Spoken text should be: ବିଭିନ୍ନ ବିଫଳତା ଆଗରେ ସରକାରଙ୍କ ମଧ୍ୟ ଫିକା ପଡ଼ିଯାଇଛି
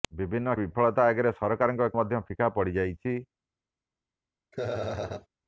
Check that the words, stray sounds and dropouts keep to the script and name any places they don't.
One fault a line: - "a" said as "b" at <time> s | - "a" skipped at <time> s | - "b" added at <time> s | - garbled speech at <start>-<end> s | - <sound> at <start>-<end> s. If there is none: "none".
- laugh at 4.5-5.3 s